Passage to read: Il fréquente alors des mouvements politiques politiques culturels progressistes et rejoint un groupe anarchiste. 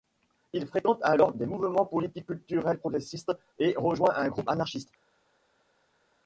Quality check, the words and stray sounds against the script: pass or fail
fail